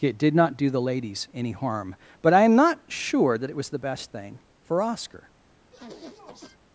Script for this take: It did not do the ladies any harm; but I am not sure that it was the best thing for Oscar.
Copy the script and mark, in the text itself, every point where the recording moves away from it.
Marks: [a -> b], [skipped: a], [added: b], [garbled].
It did not do the ladies any harm; but I am not sure that it was the best thing for Oscar.